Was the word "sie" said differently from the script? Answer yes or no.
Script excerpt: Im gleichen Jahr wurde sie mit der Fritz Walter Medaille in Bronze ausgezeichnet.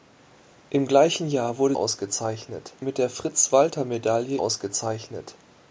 yes